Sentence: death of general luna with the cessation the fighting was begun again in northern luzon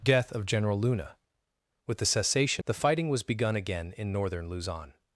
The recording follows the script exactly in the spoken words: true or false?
true